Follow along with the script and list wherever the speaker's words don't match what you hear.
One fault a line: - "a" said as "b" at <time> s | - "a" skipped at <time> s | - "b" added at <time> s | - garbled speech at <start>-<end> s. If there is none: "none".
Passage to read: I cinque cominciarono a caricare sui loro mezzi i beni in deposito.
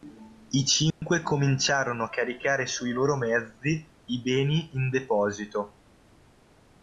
none